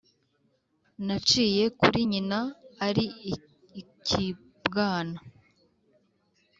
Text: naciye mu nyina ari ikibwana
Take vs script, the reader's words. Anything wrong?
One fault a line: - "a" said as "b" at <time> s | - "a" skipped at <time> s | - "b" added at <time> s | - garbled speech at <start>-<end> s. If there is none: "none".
- "mu" said as "kuri" at 1.8 s